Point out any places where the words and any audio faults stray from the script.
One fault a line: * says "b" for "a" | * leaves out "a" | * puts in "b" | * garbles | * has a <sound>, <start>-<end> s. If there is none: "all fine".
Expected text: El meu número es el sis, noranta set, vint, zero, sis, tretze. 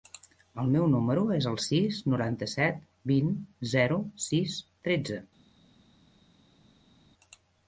all fine